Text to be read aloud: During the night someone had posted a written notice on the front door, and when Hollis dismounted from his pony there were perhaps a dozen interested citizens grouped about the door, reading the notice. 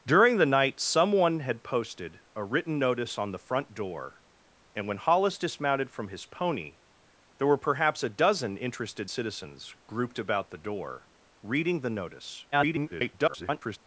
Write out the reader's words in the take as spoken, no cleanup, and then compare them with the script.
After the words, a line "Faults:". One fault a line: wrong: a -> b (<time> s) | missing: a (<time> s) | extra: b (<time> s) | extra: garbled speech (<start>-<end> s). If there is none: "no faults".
During the night someone had posted a written notice on the front door, and when Hollis dismounted from his pony there were perhaps a dozen interested citizens grouped about the door, reading the notice. [garbled]
Faults:
extra: garbled speech (12.5-13.8 s)